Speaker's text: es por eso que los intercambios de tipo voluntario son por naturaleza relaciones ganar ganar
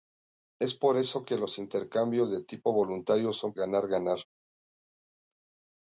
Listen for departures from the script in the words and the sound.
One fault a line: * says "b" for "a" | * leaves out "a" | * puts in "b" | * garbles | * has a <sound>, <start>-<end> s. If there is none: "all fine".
* leaves out "por naturaleza relaciones"